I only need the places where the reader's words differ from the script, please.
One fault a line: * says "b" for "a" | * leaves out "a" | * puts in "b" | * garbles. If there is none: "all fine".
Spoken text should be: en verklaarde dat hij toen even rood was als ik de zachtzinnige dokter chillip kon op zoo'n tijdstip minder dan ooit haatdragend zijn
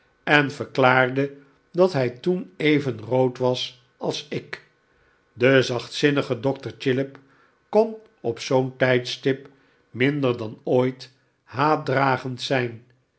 all fine